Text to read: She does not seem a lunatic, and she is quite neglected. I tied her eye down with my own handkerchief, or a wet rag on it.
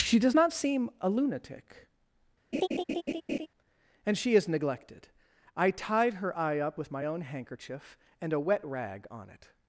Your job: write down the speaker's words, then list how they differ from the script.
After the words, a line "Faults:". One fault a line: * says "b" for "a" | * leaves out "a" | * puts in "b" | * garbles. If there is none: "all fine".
She does not seem a lunatic, and she is neglected. I tied her eye up with my own handkerchief, and a wet rag on it.
Faults:
* leaves out "quite"
* says "up" for "down"
* says "and" for "or"